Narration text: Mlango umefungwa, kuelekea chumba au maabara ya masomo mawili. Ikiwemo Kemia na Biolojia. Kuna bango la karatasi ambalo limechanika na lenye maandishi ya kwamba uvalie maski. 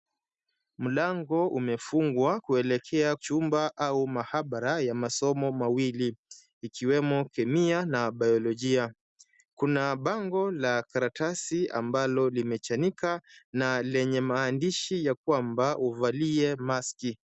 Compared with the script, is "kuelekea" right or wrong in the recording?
right